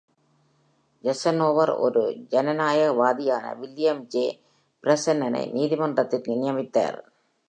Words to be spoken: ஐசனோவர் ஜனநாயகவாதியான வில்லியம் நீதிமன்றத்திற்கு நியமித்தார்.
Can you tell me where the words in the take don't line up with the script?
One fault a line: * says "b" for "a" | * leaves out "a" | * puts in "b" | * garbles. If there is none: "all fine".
* puts in "ஒரு"
* puts in "ஜே பிரென்னனை"